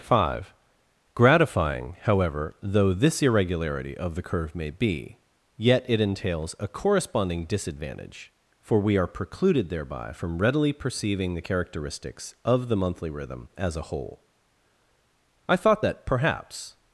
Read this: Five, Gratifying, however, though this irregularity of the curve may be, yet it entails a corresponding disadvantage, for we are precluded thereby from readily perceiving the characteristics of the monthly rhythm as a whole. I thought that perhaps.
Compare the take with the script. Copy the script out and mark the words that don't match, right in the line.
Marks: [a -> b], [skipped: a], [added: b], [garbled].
Five, Gratifying, however, though this irregularity of the curve may be, yet it entails a corresponding disadvantage, for we are precluded thereby from readily perceiving the characteristics of the monthly rhythm as a whole. I thought that perhaps.